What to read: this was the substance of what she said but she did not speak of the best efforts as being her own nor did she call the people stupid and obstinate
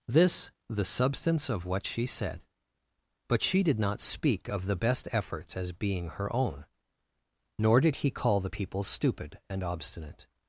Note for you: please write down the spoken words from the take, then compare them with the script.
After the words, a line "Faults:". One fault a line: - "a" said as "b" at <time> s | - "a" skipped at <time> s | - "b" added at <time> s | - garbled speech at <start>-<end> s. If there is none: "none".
this the substance of what she said but she did not speak of the best efforts as being her own nor did he call the people stupid and obstinate
Faults:
- "was" skipped at 0.5 s
- "she" said as "he" at 8.0 s